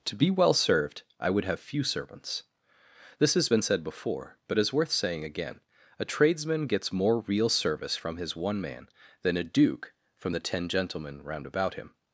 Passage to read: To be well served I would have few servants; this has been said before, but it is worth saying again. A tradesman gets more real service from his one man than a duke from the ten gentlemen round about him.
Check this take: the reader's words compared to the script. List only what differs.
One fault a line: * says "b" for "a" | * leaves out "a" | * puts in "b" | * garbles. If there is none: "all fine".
* leaves out "it"